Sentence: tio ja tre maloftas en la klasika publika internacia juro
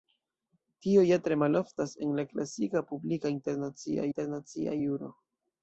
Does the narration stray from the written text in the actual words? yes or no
yes